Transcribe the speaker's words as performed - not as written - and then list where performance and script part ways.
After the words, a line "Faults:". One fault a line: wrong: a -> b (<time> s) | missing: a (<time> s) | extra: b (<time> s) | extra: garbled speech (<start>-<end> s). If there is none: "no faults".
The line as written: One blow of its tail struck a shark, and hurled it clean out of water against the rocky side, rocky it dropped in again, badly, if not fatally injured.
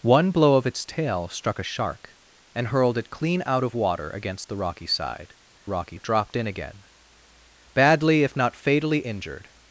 One blow of its tail struck a shark, and hurled it clean out of water against the rocky side, rocky it dropped in again, badly, if not fatally injured.
Faults:
no faults